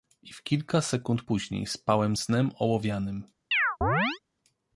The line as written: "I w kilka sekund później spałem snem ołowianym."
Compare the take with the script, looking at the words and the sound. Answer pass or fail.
fail